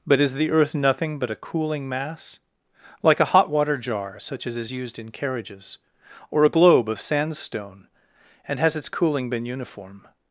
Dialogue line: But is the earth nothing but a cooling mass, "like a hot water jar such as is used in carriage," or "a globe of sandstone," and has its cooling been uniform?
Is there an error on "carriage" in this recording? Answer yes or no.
yes